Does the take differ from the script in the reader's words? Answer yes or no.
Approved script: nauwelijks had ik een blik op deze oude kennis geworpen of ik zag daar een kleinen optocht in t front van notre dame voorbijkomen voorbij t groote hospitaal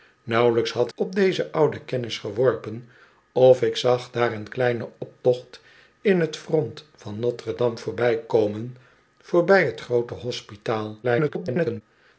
yes